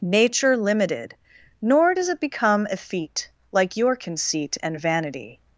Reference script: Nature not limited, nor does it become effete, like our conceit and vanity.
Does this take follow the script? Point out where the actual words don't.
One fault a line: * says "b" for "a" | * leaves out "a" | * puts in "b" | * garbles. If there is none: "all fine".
* leaves out "not"
* says "your" for "our"